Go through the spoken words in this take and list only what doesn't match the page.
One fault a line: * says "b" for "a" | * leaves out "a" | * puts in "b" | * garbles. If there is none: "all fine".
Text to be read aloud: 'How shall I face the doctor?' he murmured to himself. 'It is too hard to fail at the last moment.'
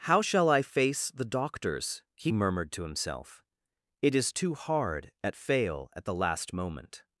* says "doctors" for "doctor"
* says "at" for "to"